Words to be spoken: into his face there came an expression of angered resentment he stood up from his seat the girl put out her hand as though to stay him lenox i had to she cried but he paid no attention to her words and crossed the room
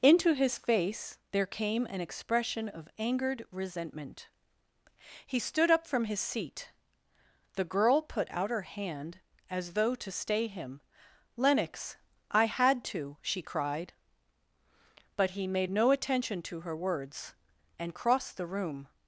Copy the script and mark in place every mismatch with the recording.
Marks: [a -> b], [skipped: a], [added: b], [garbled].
into his face there came an expression of angered resentment he stood up from his seat the girl put out her hand as though to stay him lenox i had to she cried but he [paid -> made] no attention to her words and crossed the room